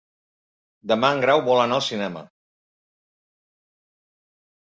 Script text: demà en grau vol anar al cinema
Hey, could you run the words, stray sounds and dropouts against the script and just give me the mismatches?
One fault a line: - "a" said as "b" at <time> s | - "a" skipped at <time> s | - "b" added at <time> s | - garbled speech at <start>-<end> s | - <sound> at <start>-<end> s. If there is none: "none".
none